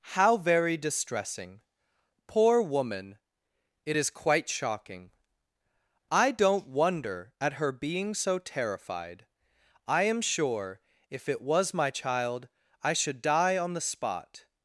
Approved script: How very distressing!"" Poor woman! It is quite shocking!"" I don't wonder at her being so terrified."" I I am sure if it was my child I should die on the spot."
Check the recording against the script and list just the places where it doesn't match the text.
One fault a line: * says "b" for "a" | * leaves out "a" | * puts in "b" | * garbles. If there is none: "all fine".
* leaves out "I"